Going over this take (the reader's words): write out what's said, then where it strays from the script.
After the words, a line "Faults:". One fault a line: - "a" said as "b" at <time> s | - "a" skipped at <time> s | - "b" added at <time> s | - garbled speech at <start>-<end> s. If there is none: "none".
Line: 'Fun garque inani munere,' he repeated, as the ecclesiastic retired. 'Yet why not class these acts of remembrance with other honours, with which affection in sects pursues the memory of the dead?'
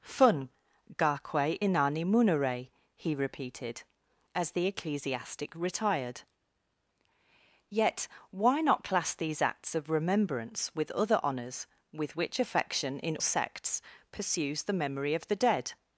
'Fun garque inani munere,' he repeated, as the ecclesiastic retired. 'Yet why not class these acts of remembrance with other honours, with which affection in sects pursues the memory of the dead?'
Faults:
none